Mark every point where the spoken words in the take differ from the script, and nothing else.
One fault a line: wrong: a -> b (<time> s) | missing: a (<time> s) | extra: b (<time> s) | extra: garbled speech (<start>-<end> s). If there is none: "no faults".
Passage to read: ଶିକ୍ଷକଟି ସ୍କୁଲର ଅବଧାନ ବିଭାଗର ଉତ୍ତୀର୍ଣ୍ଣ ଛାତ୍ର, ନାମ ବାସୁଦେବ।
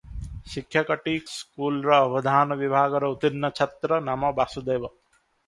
no faults